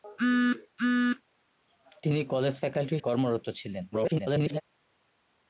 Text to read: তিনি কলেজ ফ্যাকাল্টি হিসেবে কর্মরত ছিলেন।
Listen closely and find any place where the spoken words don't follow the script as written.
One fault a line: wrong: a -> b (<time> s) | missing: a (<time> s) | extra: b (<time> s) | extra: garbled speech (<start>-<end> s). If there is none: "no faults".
missing: হিসেবে (2.9 s)
extra: garbled speech (3.9-4.6 s)